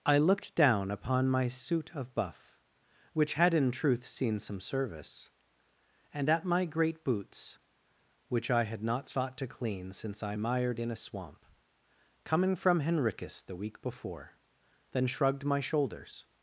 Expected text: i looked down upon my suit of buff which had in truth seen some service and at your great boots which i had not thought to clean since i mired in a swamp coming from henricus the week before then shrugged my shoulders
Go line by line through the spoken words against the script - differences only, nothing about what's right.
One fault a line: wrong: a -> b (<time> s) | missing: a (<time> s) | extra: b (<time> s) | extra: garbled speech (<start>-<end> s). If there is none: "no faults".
wrong: your -> my (6.4 s)